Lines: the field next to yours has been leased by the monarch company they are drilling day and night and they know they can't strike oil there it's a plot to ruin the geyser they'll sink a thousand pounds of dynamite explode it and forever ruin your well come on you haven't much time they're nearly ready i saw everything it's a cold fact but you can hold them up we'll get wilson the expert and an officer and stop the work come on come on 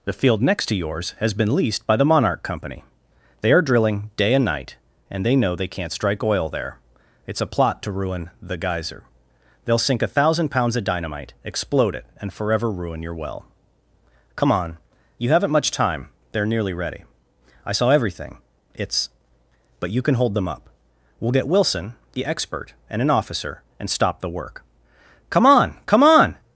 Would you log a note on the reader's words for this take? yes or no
yes